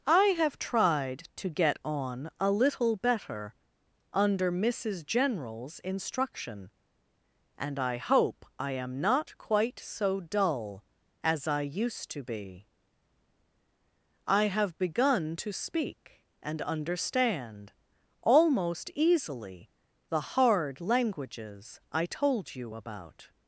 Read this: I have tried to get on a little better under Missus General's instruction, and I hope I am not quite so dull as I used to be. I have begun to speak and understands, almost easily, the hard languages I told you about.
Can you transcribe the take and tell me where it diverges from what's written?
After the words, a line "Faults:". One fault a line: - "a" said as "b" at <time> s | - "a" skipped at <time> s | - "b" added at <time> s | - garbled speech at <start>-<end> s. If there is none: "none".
I have tried to get on a little better under Missus General's instruction, and I hope I am not quite so dull as I used to be. I have begun to speak and understand, almost easily, the hard languages I told you about.
Faults:
- "understands" said as "understand" at 16.6 s